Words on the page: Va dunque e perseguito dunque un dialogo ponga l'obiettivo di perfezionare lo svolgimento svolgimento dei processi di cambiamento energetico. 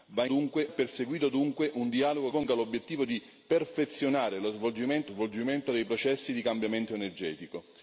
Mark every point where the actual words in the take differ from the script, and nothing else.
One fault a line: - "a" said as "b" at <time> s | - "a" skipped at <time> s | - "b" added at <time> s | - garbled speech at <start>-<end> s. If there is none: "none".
none